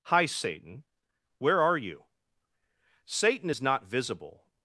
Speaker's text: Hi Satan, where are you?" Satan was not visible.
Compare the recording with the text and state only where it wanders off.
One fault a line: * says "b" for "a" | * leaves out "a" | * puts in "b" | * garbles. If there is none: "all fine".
* says "is" for "was"